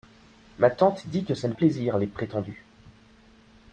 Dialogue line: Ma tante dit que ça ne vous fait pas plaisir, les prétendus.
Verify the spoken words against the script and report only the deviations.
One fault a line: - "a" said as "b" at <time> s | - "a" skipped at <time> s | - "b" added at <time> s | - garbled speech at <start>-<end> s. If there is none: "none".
- "vous fait pas" skipped at 1.5 s